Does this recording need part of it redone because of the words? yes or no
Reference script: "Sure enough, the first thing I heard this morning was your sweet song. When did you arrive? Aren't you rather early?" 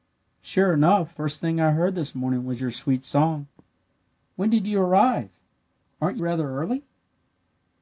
yes